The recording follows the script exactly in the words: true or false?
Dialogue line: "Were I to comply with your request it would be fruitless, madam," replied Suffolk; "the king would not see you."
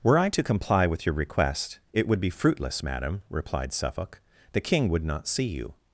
true